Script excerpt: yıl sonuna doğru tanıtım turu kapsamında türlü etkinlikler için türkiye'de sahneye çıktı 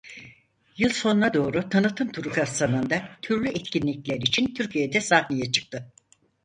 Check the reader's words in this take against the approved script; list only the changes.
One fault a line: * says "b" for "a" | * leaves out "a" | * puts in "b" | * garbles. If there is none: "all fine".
all fine